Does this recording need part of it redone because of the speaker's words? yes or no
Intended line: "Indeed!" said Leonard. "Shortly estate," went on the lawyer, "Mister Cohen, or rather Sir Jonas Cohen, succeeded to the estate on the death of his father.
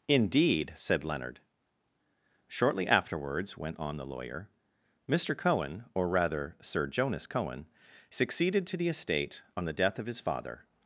yes